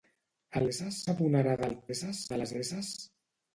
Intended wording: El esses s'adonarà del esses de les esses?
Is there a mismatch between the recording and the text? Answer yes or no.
no